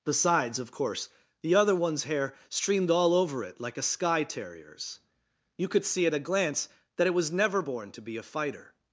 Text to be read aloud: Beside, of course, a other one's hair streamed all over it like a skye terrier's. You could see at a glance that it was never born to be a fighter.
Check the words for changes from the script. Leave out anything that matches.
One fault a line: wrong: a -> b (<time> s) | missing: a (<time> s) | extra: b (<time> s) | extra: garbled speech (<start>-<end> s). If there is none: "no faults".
wrong: Beside -> Besides (0.1 s)
wrong: a -> the (1.4 s)